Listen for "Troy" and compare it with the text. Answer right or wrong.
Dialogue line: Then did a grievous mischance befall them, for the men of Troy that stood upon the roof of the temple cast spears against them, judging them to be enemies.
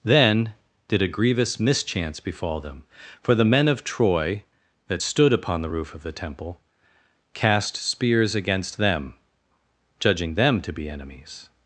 right